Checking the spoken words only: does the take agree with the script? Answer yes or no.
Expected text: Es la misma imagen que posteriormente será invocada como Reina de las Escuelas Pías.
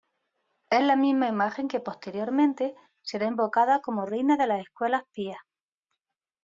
yes